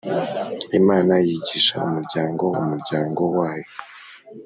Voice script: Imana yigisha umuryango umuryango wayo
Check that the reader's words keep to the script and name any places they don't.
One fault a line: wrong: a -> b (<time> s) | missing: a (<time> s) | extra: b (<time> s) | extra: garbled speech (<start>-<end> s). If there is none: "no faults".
no faults